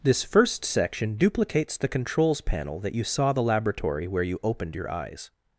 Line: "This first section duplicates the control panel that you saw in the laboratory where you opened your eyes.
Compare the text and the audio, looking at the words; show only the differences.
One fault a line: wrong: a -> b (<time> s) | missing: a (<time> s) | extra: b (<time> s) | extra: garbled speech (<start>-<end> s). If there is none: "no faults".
wrong: control -> controls (1.9 s)
missing: in (3.3 s)